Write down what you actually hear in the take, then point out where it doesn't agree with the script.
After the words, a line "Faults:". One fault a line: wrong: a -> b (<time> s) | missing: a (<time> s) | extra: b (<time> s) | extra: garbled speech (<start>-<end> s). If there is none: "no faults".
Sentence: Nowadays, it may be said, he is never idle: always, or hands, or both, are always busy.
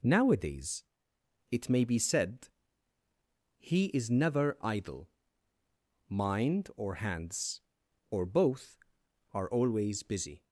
Nowadays, it may be said, he is never idle: mind, or hands, or both, are always busy.
Faults:
wrong: always -> mind (6.1 s)